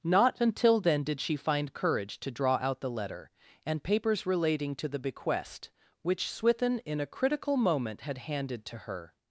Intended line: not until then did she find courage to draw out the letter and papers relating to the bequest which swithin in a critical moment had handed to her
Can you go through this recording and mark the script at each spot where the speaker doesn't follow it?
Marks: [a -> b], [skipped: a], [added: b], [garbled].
not until then did she find courage to draw out the letter and papers relating to the bequest which swithin in a critical moment had handed to her